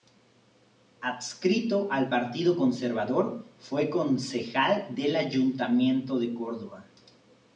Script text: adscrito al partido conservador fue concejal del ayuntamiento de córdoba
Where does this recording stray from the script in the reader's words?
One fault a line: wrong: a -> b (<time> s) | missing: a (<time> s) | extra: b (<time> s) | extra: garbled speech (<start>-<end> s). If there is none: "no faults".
no faults